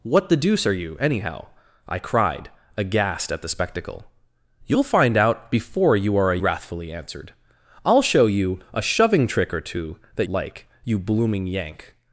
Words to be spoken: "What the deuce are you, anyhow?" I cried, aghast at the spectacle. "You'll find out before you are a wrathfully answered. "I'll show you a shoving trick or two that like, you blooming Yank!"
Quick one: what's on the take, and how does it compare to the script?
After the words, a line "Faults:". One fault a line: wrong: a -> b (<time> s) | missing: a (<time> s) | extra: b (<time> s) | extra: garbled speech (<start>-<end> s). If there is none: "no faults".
"What the deuce are you, anyhow?" I cried, aghast at the spectacle. "You'll find out before you are a wrathfully answered. "I'll show you a shoving trick or two that like, you blooming Yank!"
Faults:
no faults